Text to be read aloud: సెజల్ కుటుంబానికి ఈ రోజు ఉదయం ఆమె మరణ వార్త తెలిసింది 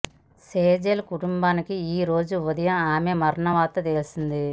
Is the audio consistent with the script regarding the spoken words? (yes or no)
yes